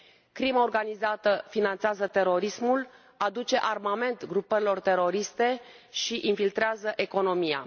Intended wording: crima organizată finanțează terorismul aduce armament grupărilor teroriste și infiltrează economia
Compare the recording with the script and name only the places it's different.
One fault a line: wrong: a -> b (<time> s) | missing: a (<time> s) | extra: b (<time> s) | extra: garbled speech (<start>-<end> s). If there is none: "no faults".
no faults